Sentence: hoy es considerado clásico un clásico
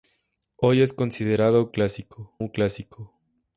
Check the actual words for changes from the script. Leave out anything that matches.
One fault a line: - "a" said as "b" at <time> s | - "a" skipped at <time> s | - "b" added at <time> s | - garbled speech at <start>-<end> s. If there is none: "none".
none